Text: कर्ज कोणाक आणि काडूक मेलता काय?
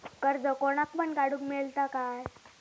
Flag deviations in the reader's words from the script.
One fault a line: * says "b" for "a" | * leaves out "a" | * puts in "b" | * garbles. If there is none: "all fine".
* says "पण" for "आणि"